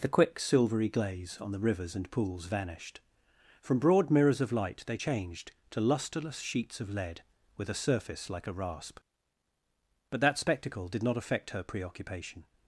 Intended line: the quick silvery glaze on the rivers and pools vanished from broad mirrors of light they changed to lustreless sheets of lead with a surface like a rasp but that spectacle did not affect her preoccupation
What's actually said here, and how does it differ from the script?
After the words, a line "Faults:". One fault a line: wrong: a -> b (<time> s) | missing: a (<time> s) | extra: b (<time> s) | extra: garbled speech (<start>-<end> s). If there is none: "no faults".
the quick silvery glaze on the rivers and pools vanished from broad mirrors of light they changed to lustreless sheets of lead with a surface like a rasp but that spectacle did not affect her preoccupation
Faults:
no faults